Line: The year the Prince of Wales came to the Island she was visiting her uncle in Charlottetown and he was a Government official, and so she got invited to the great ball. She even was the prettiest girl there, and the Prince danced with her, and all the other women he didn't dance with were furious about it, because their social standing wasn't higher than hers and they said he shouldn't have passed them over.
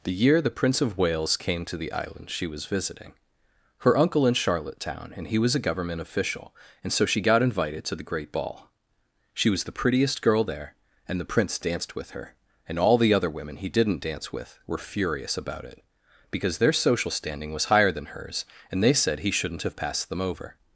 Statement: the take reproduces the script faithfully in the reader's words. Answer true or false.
false